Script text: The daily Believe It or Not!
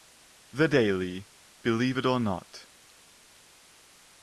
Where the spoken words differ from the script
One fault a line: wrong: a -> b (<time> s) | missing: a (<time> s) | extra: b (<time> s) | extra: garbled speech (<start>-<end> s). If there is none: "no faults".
no faults